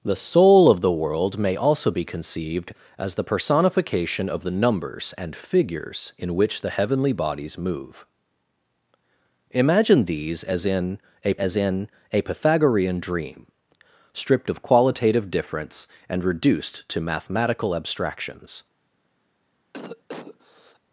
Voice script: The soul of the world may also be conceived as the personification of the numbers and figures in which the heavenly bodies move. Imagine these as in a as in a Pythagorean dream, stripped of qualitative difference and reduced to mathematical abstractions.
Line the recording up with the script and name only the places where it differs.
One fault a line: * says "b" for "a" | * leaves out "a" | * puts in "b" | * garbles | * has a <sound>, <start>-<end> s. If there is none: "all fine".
* has a cough, 19.7-20.8 s